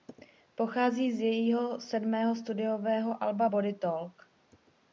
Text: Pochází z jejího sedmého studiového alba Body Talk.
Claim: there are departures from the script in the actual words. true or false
false